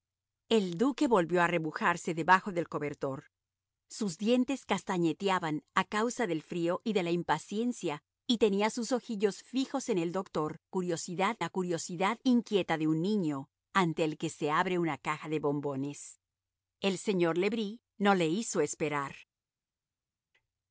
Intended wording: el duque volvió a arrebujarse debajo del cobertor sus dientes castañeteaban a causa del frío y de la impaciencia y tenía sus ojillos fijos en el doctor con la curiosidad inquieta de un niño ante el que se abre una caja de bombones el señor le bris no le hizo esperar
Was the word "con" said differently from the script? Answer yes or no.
yes